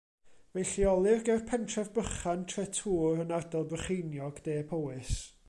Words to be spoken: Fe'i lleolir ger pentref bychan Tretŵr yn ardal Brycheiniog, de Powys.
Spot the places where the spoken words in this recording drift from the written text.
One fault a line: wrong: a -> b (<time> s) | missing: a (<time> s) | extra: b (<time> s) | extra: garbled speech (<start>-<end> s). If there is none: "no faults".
no faults